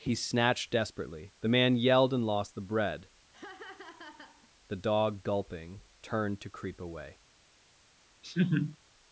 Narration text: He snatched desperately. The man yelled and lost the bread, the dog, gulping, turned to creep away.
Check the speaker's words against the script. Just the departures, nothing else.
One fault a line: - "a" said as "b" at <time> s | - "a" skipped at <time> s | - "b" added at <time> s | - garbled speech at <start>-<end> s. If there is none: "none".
none